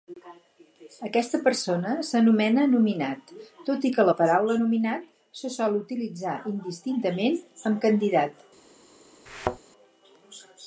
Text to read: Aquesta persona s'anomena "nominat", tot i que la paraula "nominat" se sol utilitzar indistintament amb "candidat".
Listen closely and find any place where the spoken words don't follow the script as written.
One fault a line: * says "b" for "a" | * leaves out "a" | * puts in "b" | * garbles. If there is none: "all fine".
all fine